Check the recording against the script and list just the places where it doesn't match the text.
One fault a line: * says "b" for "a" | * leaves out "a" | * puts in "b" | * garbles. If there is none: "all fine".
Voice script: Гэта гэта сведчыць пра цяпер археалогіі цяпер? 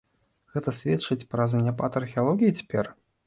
* leaves out "гэта"
* says "заняпад" for "цяпер"